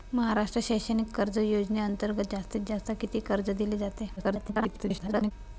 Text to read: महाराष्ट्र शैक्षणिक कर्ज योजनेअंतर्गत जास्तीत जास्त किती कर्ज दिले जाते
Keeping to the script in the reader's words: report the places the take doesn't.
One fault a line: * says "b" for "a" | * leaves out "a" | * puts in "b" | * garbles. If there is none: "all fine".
* garbles